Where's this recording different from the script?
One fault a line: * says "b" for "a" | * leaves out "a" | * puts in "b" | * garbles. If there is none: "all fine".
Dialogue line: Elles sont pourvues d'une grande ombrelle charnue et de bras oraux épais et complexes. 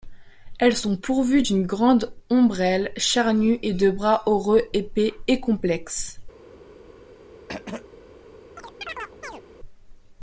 all fine